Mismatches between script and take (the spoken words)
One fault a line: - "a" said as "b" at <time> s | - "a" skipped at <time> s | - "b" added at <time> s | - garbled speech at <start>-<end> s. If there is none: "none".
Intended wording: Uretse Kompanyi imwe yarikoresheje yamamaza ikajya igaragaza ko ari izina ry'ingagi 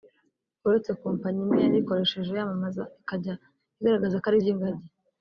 - "izina" skipped at 4.4 s